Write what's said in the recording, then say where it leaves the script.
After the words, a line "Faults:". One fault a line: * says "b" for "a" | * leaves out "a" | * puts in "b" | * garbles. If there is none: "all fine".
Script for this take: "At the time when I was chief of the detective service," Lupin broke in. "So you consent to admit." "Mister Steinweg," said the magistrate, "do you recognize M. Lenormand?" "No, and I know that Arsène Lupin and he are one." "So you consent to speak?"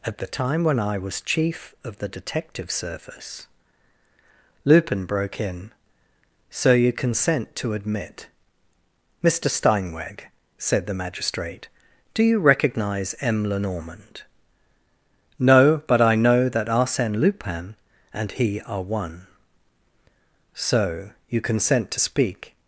"At the time when I was chief of the detective service," Lupin broke in. "So you consent to admit." "Mister Steinweg," said the magistrate, "do you recognize M. Lenormand?" "No, but I know that Arsène Lupin and he are one." "So you consent to speak?"
Faults:
* says "but" for "and"